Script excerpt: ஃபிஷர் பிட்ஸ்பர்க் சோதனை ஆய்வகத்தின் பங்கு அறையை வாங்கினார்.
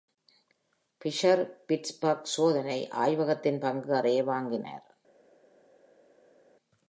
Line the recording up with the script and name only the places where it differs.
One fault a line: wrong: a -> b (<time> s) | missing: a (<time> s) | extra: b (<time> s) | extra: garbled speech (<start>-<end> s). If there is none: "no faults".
no faults